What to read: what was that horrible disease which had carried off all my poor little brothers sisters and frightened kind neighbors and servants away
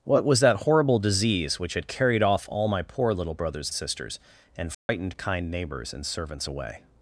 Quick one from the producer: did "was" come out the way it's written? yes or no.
yes